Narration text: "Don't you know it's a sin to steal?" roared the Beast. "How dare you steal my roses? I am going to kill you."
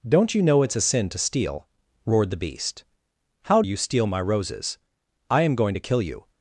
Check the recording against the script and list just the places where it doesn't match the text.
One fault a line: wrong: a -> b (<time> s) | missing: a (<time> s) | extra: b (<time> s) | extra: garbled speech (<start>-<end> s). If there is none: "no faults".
missing: dare (3.6 s)